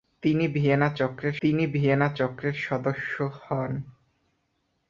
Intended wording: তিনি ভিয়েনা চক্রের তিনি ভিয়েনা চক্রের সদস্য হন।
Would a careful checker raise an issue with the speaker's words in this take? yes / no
no